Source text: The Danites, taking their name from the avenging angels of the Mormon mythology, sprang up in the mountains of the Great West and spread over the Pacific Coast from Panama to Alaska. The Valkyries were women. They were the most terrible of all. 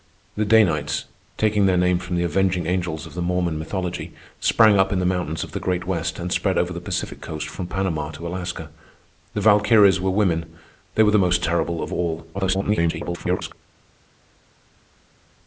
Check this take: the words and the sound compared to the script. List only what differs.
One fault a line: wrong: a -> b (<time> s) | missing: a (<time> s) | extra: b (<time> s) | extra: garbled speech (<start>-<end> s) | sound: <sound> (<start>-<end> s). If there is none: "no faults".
extra: garbled speech (12.3-13.5 s)